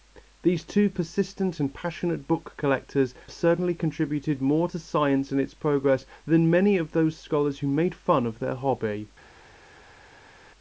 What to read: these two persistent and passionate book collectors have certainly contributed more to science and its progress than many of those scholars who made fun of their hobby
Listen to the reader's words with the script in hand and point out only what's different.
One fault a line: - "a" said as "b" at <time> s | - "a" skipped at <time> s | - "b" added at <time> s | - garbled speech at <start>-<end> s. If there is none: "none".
- "have" skipped at 3.1 s